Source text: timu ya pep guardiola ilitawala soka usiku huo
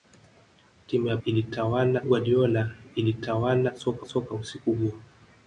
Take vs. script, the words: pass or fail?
fail